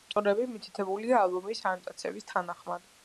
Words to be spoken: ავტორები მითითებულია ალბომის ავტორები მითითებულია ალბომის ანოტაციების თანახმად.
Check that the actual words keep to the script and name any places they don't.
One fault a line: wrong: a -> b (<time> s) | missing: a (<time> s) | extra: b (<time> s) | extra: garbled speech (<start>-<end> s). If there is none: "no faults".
missing: ავტორები მითითებულია ალბომის (1.6 s)